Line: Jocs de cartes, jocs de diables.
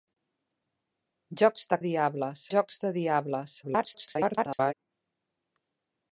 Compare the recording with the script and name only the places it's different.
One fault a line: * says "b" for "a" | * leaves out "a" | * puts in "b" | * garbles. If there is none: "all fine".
* says "diables" for "cartes"
* garbles